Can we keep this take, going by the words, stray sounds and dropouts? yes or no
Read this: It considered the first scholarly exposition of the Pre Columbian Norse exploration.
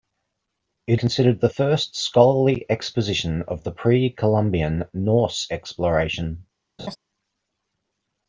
no